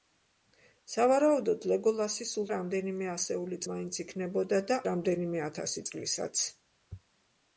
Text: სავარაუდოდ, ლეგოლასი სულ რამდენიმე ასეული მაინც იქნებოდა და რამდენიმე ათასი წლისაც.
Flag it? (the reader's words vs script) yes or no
no